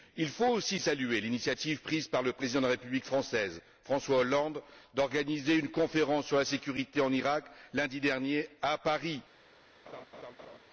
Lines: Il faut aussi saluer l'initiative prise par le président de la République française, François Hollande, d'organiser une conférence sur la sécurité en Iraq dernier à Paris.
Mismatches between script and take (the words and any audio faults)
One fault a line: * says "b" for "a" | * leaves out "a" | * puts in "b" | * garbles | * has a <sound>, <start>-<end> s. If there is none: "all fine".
* puts in "lundi"
* has a laugh, 9.9-10.6 s